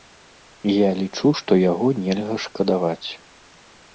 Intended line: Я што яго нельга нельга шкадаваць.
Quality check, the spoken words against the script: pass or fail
fail